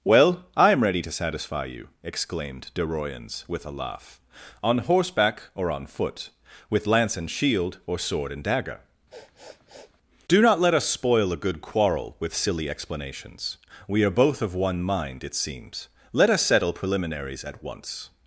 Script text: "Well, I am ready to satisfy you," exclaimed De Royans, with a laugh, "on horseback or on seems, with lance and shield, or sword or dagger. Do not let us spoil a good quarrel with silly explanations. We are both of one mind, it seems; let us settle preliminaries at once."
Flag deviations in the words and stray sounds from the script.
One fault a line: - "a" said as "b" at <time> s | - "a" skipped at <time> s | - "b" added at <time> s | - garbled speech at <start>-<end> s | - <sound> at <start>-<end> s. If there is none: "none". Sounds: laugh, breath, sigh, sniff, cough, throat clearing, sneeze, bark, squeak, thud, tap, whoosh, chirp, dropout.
- "seems" said as "foot" at 5.8 s
- "or" said as "and" at 8.3 s
- sniff at 9.1-10.0 s